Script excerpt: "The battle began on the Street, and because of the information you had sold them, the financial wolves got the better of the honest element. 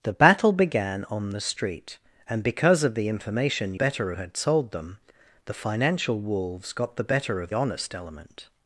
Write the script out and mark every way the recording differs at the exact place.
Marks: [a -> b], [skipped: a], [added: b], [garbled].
"The battle began on the Street, and because of the information [you -> better] had sold them, the financial wolves got the better of [skipped: the] honest element.